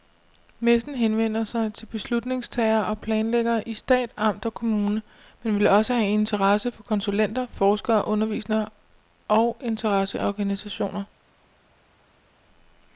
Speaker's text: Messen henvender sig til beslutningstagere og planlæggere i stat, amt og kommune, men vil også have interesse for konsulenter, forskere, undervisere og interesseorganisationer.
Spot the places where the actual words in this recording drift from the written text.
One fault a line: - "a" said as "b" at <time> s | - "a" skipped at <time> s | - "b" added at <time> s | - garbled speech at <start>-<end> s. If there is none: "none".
none